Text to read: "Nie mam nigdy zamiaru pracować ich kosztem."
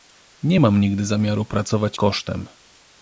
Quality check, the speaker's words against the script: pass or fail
fail